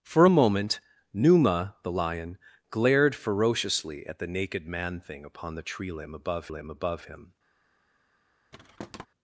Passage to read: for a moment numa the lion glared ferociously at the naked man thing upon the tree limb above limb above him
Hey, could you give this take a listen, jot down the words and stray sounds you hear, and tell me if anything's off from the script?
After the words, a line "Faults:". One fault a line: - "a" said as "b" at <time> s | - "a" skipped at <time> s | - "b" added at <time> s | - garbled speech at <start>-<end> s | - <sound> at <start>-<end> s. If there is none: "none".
for a moment numa the lion glared ferociously at the naked man thing upon the tree limb above limb above him
Faults:
- thud at 8.5-9.1 s